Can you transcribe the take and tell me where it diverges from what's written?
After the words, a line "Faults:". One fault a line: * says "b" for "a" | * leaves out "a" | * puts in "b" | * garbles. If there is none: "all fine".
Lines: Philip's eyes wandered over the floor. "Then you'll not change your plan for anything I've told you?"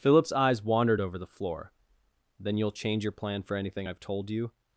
Philip's eyes wandered over the floor. "Then you'll change your plan for anything I've told you?"
Faults:
* leaves out "not"